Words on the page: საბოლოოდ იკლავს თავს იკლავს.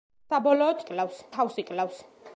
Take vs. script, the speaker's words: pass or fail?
pass